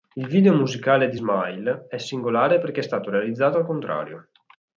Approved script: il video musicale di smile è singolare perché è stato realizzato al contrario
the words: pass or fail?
pass